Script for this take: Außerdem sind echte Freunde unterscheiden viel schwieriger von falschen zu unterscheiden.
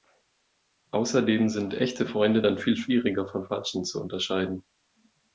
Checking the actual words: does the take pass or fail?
fail